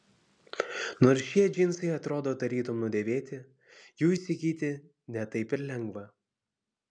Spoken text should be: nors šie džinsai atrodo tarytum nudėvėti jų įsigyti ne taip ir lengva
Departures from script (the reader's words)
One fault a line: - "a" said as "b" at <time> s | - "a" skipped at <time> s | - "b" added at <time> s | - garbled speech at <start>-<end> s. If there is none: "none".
none